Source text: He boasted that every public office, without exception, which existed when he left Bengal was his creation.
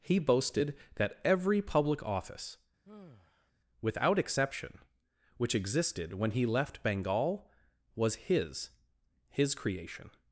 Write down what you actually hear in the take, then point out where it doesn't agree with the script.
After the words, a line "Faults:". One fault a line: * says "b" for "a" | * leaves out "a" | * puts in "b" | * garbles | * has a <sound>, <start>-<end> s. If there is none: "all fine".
He boasted that every public office, without exception, which existed when he left Bengal was his his creation.
Faults:
* has a sigh, 2.8-3.5 s
* puts in "his"